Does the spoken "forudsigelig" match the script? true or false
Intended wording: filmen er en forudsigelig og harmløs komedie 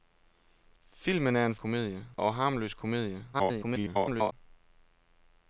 false